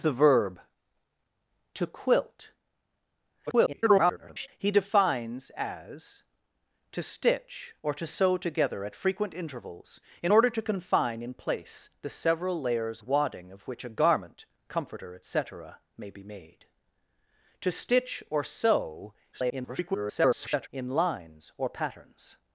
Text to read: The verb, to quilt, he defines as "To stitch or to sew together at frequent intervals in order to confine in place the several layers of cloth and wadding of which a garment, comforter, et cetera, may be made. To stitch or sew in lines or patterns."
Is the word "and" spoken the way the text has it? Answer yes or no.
no